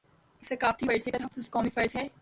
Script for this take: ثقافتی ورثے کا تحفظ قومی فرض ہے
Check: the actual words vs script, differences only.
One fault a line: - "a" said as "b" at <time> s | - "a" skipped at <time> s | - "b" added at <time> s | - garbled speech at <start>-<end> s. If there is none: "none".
none